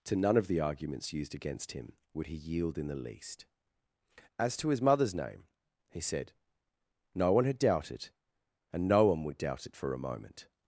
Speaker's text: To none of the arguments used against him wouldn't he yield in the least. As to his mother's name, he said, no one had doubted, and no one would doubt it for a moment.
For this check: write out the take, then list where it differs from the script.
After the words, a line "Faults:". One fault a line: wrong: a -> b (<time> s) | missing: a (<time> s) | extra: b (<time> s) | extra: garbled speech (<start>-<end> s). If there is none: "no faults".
To none of the arguments used against him would he yield in the least. As to his mother's name, he said, no one had doubted, and no one would doubt it for a moment.
Faults:
wrong: wouldn't -> would (2.1 s)